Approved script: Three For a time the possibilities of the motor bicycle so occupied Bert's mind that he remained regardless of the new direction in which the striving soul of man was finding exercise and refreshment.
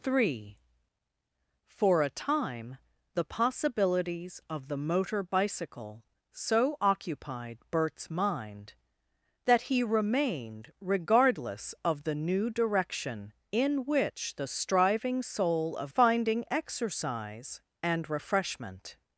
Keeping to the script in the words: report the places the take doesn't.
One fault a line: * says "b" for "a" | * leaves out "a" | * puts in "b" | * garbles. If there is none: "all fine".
* leaves out "man was"